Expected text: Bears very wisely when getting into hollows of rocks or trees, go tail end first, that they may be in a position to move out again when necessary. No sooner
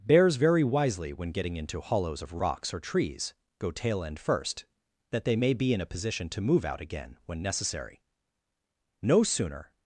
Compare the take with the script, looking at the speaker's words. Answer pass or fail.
pass